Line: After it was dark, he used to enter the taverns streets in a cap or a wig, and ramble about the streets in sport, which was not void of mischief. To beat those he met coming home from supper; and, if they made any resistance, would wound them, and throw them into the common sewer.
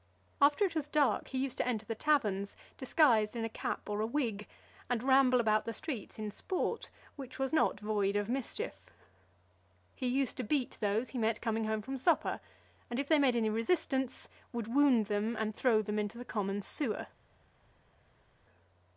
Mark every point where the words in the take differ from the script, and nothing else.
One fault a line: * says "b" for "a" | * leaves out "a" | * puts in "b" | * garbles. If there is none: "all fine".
* says "disguised" for "streets"
* puts in "He used"